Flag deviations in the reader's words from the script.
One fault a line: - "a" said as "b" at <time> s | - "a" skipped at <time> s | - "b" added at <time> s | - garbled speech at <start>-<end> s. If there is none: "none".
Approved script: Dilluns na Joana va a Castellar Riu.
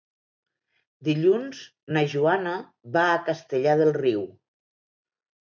- "del" added at 3.8 s